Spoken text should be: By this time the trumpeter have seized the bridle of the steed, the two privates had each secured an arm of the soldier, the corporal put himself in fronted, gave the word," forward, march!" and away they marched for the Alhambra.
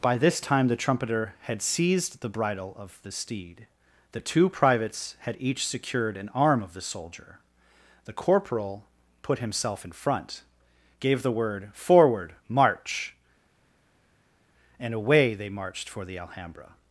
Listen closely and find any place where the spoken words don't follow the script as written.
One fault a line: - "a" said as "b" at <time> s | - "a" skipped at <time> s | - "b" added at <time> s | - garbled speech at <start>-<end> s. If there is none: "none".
- "have" said as "had" at 1.4 s
- "fronted" said as "front" at 9.9 s